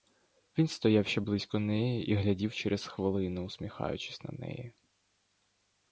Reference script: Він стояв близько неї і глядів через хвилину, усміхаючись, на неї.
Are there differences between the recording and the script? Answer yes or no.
yes